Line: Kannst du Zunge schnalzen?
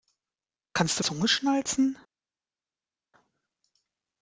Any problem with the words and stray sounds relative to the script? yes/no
no